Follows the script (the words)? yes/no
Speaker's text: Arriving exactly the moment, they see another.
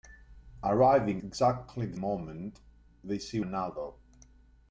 yes